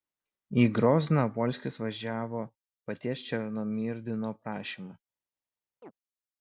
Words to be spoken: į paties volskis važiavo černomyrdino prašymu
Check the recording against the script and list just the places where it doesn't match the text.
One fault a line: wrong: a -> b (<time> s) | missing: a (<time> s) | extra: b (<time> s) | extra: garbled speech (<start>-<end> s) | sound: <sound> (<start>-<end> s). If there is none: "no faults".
wrong: paties -> grozną (0.8 s)
extra: paties (2.9 s)
sound: chirp (5.8-5.9 s)